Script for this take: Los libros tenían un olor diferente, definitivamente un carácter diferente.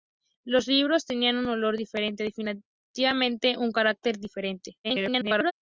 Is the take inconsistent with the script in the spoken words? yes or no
yes